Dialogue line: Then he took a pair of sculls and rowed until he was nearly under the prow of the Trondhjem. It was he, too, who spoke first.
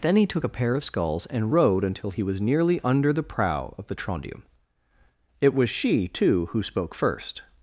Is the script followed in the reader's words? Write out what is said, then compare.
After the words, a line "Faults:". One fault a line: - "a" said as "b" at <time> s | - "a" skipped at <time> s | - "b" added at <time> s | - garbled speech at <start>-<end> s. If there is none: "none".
Then he took a pair of sculls and rowed until he was nearly under the prow of the Trondhjem. It was she, too, who spoke first.
Faults:
- "he" said as "she" at 5.7 s